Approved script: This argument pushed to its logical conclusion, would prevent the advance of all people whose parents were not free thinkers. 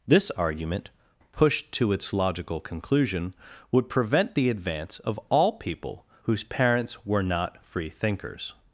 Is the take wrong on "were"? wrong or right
right